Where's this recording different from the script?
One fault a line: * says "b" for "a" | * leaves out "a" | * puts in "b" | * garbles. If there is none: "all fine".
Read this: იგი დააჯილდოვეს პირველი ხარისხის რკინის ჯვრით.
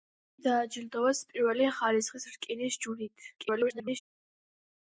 * garbles